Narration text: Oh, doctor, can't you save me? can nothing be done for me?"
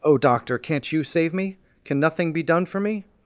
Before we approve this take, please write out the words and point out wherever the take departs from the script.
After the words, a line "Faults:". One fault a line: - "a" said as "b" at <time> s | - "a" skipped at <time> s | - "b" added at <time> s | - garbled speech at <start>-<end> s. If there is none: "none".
Oh, doctor, can't you save me? can nothing be done for me?"
Faults:
none